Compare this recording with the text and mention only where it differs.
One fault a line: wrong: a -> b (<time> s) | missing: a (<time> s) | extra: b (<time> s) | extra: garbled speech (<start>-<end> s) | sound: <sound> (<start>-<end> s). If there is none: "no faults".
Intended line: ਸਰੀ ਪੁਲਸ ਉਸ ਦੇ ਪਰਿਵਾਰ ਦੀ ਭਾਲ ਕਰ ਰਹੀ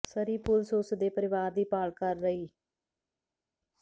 no faults